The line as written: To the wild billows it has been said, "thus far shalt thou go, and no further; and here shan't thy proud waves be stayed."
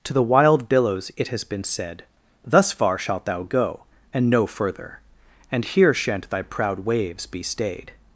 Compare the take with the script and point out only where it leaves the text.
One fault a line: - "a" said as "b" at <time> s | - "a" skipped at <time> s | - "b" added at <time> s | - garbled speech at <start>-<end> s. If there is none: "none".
none